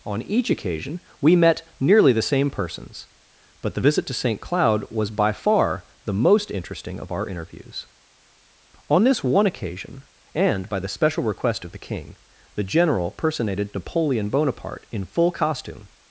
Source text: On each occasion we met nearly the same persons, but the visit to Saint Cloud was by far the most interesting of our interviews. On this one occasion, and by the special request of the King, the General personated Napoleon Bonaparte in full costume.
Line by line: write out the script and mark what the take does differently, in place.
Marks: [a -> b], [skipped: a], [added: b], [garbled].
On each occasion we met nearly the same persons, but the visit to Saint Cloud was by far the most interesting of our interviews. On this one occasion, and by the special request of the King, the General personated Napoleon Bonaparte in full costume.